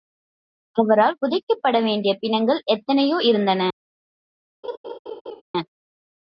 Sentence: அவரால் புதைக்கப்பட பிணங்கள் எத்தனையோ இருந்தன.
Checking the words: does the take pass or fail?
fail